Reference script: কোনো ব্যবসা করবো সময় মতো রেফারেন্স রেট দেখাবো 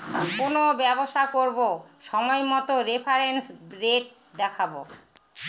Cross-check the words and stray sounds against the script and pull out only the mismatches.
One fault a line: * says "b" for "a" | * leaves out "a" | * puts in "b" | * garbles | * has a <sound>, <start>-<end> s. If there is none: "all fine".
all fine